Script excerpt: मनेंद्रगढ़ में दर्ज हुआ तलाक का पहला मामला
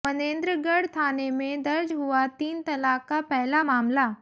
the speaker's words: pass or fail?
fail